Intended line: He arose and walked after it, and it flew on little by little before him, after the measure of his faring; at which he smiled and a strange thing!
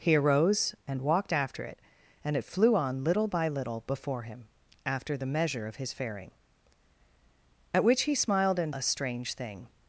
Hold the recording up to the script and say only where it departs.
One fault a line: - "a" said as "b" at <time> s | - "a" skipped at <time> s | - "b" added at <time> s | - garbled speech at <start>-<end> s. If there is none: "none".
none